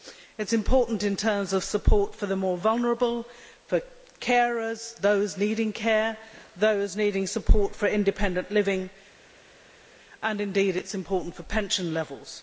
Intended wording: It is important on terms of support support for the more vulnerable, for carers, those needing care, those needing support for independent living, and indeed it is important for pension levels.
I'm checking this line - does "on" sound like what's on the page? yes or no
no